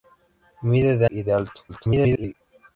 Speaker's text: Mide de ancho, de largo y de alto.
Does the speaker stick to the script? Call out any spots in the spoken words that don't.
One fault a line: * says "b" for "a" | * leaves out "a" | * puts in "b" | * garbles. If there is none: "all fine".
* leaves out "ancho de largo"
* garbles